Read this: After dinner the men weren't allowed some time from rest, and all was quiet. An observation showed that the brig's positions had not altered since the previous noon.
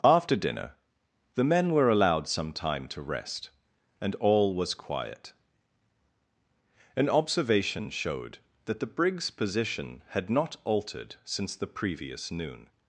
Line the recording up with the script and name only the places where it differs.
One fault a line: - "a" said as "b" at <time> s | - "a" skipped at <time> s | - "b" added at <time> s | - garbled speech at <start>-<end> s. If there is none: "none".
- "weren't" said as "were" at 1.7 s
- "from" said as "to" at 2.9 s
- "positions" said as "position" at 9.3 s